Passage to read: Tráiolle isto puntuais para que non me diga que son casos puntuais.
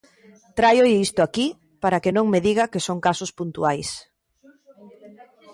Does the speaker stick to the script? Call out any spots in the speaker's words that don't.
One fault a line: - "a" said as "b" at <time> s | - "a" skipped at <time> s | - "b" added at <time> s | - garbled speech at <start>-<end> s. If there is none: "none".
- "puntuais" said as "aquí" at 1.2 s